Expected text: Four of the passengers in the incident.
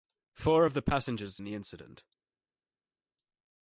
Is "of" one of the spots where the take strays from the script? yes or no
no